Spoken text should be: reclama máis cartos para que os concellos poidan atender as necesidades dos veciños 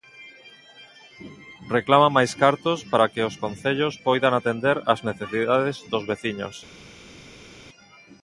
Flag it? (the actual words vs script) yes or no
no